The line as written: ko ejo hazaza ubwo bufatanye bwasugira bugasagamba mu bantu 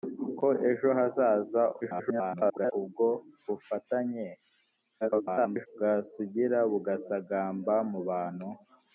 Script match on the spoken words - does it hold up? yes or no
no